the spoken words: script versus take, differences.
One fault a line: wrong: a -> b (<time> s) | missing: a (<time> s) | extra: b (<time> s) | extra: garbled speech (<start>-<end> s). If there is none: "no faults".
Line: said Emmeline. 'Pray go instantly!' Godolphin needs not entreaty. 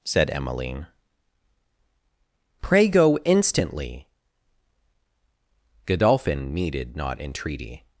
wrong: needs -> needed (6.5 s)